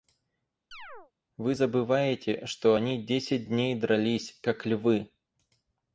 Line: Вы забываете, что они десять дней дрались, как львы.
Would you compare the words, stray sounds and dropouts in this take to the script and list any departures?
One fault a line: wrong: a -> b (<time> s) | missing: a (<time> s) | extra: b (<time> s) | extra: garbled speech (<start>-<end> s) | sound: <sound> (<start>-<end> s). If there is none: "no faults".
sound: chirp (0.7-1.1 s)